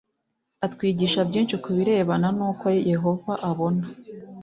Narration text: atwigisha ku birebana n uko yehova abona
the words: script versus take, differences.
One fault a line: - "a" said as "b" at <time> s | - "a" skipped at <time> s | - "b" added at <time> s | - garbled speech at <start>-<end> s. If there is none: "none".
- "byinshi" added at 1.3 s